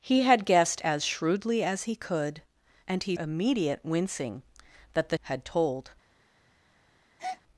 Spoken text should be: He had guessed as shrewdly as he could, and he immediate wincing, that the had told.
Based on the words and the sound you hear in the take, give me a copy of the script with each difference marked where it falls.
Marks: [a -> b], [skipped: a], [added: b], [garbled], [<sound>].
He had guessed as shrewdly as he could, and he immediate wincing, that the had told. [breath]